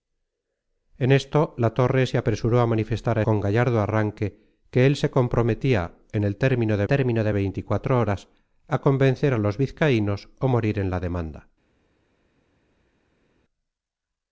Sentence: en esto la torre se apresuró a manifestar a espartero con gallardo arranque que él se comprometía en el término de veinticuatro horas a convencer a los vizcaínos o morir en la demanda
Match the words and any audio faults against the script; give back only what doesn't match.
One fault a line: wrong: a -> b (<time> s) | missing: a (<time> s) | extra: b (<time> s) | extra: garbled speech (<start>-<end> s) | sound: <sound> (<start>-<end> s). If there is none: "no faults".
missing: espartero (3.2 s)
extra: término de (6.8 s)